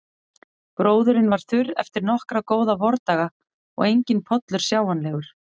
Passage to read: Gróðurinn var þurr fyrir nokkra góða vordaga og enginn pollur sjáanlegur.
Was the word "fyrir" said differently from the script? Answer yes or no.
yes